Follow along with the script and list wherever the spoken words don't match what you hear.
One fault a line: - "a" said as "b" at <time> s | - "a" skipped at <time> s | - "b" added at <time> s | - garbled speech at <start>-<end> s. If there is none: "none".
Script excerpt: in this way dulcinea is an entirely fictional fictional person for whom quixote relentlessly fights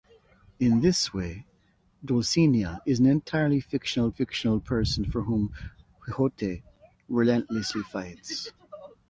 none